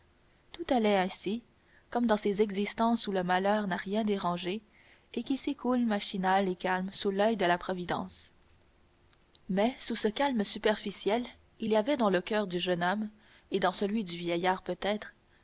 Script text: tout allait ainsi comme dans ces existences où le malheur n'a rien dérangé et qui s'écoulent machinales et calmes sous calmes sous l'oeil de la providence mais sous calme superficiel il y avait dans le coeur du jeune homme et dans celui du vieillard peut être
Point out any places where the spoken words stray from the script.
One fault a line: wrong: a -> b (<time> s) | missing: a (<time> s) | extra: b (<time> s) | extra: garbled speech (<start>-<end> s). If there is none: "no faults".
missing: calmes sous (7.1 s)
extra: ce (9.9 s)